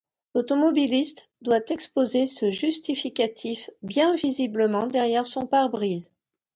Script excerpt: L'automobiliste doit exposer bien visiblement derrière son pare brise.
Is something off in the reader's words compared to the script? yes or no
yes